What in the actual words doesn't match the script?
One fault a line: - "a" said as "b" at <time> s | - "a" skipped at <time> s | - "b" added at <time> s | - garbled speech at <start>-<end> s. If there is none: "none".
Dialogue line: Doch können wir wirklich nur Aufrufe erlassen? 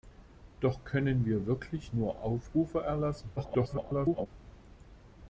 - garbled speech at 3.4-4.3 s